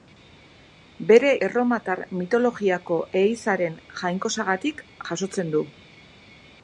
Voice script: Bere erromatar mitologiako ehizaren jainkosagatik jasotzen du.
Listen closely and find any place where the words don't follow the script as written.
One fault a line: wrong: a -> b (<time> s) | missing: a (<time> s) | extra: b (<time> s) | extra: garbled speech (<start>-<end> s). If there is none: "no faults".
no faults